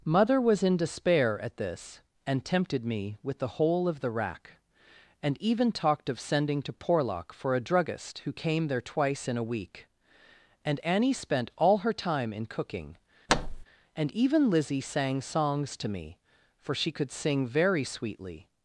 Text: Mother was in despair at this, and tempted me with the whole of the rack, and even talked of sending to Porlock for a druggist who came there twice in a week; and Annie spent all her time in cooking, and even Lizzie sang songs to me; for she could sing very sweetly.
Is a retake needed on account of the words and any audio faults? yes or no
yes